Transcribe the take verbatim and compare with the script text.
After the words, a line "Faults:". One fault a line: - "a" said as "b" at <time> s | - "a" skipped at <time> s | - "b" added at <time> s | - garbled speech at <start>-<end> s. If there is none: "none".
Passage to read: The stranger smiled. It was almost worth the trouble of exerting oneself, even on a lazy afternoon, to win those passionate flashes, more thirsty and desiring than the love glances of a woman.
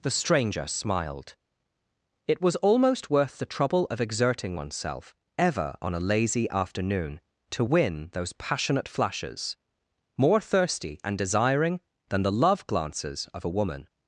The stranger smiled. It was almost worth the trouble of exerting oneself, ever on a lazy afternoon, to win those passionate flashes, more thirsty and desiring than the love glances of a woman.
Faults:
- "even" said as "ever" at 5.4 s